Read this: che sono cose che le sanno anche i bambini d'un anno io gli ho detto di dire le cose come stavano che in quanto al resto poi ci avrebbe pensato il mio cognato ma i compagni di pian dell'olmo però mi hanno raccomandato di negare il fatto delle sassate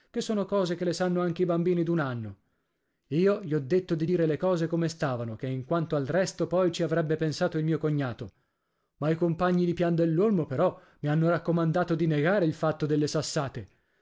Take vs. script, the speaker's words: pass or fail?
pass